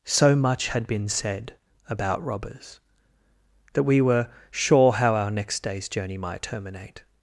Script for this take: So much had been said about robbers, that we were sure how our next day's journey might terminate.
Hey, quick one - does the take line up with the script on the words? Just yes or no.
yes